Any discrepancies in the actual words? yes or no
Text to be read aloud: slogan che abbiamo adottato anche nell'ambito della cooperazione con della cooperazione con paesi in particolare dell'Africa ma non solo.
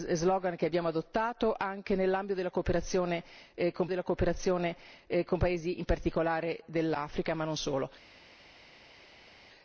no